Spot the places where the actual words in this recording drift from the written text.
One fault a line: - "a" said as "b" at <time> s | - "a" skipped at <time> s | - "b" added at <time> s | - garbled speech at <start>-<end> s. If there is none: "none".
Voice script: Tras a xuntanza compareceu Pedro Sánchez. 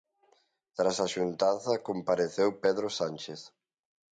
none